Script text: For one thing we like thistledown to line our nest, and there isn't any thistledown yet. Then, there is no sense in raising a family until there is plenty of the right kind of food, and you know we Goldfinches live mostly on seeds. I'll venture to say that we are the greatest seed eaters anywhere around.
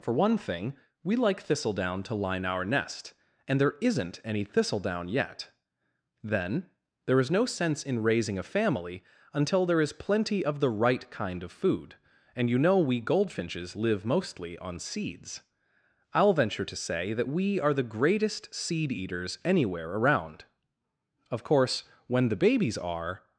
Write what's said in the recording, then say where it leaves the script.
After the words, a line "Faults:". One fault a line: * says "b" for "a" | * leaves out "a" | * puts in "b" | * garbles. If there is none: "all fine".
For one thing we like thistledown to line our nest, and there isn't any thistledown yet. Then, there is no sense in raising a family until there is plenty of the right kind of food, and you know we Goldfinches live mostly on seeds. I'll venture to say that we are the greatest seed eaters anywhere around. Of course when the babies are
Faults:
* puts in "Of course when the babies are"